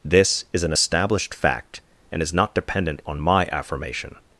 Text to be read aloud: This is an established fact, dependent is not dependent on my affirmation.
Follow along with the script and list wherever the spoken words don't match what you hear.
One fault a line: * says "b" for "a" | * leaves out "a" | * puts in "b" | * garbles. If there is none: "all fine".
* says "and" for "dependent"